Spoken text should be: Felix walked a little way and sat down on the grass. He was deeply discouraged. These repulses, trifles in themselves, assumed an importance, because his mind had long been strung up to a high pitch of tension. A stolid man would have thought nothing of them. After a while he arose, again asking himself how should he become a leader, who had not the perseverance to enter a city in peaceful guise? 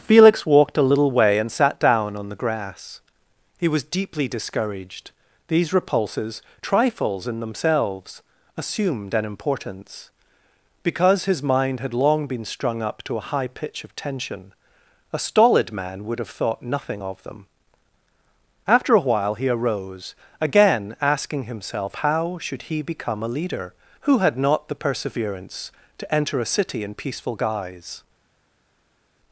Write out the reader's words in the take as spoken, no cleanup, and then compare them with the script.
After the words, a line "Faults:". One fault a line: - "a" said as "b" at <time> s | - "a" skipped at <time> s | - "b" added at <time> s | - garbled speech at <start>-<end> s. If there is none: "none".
Felix walked a little way and sat down on the grass. He was deeply discouraged. These repulses, trifles in themselves, assumed an importance, because his mind had long been strung up to a high pitch of tension. A stolid man would have thought nothing of them. After a while he arose, again asking himself how should he become a leader, who had not the perseverance to enter a city in peaceful guise?
Faults:
none